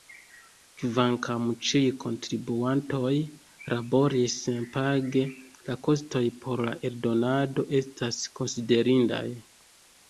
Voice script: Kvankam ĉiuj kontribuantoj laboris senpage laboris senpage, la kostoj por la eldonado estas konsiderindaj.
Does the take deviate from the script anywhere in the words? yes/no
yes